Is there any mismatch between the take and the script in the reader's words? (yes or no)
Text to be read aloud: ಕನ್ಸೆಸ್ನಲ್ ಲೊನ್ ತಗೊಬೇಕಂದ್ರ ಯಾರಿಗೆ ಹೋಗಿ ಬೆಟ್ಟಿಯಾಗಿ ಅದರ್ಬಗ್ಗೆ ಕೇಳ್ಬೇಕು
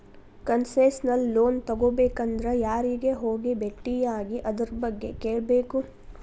no